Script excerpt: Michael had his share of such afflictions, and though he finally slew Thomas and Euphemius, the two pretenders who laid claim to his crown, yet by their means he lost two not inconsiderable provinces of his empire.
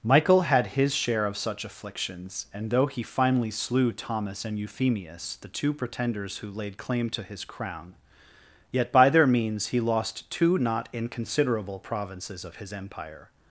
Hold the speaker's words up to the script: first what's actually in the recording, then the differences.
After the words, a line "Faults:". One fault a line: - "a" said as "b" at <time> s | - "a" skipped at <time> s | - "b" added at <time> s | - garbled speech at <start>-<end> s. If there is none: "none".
Michael had his share of such afflictions, and though he finally slew Thomas and Euphemius, the two pretenders who laid claim to his crown, yet by their means he lost two not inconsiderable provinces of his empire.
Faults:
none